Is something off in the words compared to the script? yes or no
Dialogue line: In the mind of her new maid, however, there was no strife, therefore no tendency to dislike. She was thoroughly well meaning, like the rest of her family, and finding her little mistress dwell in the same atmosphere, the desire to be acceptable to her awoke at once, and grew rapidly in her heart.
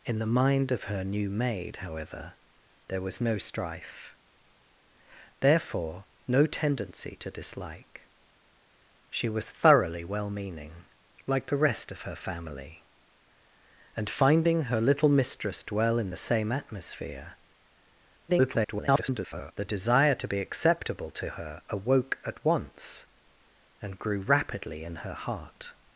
yes